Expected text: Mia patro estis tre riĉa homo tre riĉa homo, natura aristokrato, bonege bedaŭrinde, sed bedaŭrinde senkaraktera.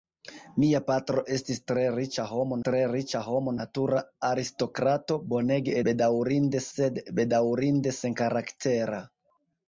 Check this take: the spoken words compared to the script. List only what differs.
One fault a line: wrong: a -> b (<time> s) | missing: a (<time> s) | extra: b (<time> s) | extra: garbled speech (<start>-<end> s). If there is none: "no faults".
no faults